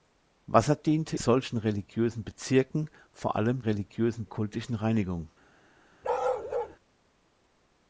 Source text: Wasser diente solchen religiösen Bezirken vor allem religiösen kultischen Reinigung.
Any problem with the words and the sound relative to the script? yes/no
yes